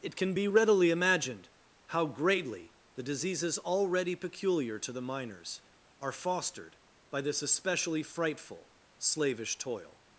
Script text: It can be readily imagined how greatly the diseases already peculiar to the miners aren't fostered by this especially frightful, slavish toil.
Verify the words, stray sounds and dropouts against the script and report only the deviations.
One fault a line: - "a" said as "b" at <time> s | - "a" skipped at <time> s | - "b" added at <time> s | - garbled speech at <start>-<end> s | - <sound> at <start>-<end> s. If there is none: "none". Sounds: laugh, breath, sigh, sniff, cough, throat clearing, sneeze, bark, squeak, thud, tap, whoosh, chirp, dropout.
- "aren't" said as "are" at 6.0 s